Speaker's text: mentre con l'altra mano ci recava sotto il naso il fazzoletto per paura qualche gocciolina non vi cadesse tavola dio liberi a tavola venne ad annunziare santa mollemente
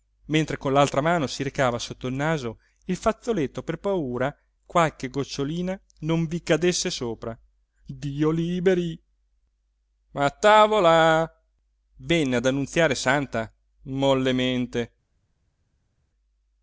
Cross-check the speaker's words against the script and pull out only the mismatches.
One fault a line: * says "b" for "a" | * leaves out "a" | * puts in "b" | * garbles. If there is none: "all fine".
* says "si" for "ci"
* says "sopra" for "tavola"